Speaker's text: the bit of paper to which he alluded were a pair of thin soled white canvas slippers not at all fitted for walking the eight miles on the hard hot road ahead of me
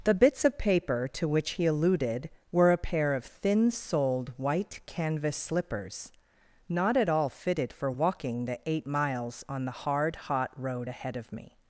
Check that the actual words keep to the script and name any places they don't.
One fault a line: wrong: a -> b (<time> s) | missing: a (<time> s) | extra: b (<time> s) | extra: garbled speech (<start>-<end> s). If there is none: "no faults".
wrong: bit -> bits (0.1 s)